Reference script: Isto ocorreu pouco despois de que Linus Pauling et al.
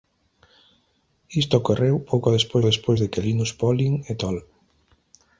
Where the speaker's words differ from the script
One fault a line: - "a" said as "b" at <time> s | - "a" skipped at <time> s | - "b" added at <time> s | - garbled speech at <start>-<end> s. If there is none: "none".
- "despois" added at 2.7 s